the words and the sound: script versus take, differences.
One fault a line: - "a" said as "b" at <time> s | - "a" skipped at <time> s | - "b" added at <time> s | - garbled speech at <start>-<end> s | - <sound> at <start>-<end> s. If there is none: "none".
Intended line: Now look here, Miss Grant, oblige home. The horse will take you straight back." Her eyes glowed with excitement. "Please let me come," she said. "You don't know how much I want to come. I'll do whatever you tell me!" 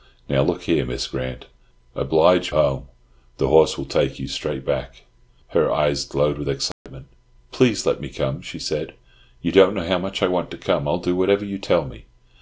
- dropout at 6.7-6.9 s